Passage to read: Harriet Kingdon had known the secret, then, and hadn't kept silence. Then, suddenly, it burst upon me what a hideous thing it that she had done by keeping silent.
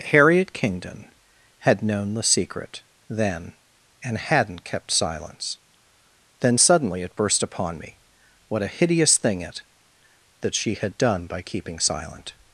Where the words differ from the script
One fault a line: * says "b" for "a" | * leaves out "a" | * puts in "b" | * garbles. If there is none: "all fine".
all fine